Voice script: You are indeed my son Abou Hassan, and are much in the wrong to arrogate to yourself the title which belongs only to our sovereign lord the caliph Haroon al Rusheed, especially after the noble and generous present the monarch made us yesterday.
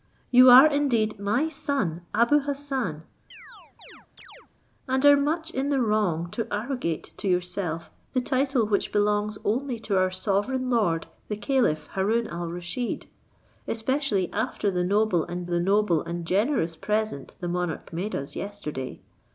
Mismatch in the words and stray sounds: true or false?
true